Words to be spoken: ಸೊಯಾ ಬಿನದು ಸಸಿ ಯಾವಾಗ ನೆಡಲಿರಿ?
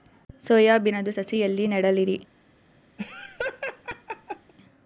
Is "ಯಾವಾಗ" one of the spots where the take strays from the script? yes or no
yes